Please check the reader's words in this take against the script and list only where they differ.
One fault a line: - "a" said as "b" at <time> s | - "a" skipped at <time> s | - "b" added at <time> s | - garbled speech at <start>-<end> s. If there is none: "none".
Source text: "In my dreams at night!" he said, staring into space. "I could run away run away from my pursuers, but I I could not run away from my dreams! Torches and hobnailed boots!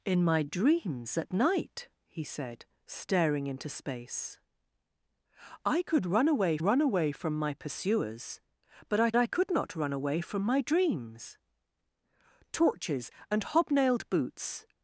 none